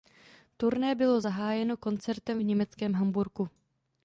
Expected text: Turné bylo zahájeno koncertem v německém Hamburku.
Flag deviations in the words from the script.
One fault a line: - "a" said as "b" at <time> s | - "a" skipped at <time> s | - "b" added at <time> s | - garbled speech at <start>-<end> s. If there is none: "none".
none